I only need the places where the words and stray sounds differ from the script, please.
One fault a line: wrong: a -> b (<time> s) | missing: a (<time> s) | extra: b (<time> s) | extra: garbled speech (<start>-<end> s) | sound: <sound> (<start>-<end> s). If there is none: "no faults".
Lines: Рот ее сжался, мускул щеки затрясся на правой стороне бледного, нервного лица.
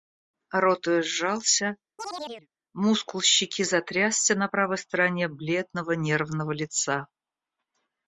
sound: chirp (2.0-2.5 s)